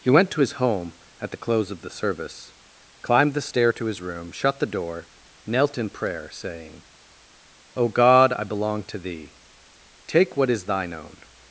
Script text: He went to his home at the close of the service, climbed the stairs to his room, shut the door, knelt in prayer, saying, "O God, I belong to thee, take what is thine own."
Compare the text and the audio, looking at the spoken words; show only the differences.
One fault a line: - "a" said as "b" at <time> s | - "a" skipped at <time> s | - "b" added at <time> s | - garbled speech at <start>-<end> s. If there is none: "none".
- "stairs" said as "stair" at 3.4 s